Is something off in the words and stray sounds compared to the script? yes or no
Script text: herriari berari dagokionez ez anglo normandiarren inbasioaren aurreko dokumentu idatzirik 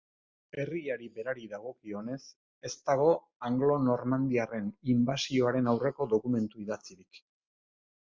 yes